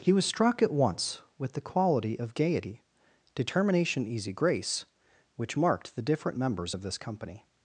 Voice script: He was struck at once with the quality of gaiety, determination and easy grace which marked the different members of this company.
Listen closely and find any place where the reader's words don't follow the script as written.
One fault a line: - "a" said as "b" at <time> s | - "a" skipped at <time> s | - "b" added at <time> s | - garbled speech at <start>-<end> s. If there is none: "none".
- "and" skipped at 4.1 s